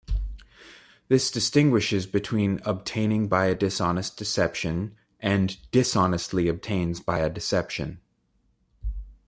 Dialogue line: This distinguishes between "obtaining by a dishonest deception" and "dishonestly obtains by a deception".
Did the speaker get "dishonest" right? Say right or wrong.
right